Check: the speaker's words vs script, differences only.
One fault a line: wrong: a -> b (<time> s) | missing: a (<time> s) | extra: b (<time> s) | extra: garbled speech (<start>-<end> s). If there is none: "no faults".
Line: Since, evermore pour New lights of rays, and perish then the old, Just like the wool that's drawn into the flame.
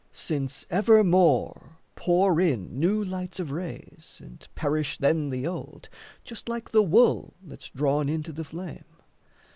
extra: in (2.4 s)